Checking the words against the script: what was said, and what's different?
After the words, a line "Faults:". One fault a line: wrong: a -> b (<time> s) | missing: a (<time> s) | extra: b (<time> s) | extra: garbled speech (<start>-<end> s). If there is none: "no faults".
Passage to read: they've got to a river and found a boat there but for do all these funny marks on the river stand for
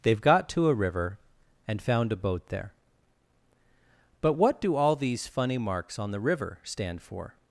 they've got to a river and found a boat there but what do all these funny marks on the river stand for
Faults:
wrong: for -> what (4.3 s)